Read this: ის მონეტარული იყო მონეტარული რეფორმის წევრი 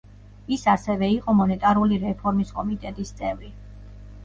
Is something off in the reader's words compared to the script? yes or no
yes